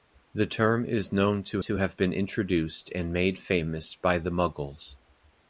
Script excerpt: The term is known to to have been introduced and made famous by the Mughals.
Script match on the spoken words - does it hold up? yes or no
yes